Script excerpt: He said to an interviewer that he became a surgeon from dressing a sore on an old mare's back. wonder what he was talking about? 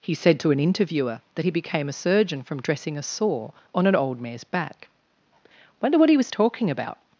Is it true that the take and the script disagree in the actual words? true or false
false